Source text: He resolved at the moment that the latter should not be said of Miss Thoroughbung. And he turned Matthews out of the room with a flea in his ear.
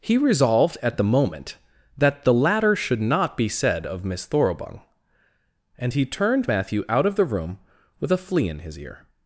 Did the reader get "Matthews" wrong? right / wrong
wrong